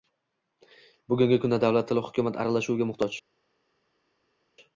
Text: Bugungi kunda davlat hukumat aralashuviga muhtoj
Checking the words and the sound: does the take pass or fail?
fail